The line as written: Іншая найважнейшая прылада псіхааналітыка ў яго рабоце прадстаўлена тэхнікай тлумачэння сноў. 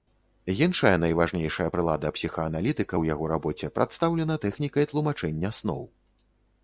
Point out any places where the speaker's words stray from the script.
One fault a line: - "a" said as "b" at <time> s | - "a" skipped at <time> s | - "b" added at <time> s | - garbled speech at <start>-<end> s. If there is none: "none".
none